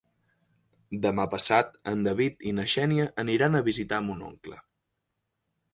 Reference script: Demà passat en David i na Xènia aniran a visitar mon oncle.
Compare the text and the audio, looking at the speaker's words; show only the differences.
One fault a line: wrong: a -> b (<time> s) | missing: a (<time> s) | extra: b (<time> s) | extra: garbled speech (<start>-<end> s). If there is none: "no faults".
no faults